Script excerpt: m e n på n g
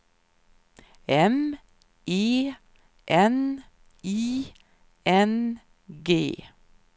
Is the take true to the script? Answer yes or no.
no